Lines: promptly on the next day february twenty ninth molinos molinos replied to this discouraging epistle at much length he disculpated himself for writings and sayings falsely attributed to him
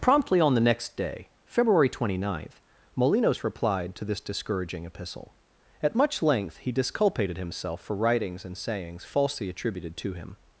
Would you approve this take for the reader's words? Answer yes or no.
no